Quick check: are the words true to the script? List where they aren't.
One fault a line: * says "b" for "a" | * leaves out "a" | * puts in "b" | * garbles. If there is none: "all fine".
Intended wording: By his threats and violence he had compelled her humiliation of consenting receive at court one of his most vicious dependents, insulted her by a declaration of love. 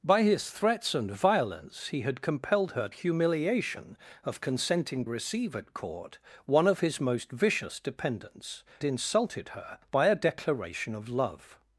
all fine